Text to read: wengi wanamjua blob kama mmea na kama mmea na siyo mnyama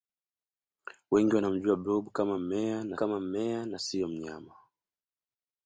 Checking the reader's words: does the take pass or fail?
pass